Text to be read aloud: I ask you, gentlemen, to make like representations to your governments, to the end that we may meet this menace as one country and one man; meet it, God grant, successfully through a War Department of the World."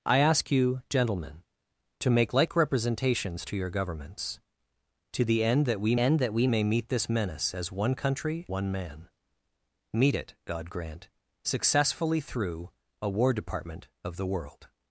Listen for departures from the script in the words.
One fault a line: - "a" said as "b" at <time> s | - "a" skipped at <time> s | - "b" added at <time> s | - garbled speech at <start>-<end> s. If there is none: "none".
- "end that we" added at 6.0 s
- "and" skipped at 8.5 s